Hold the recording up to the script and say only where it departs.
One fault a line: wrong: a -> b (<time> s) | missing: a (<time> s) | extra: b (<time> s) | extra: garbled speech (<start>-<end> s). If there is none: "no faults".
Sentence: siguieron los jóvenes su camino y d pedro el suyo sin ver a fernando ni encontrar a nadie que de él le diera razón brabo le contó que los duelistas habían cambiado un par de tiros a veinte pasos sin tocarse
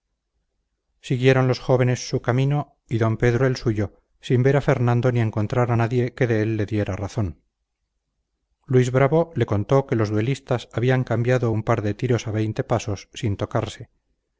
extra: luis (8.6 s)